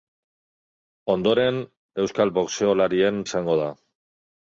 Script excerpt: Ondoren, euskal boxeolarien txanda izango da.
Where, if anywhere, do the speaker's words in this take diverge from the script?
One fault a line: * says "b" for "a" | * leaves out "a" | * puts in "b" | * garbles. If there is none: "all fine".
* leaves out "txanda"